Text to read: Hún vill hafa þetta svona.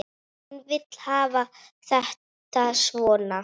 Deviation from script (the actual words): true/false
false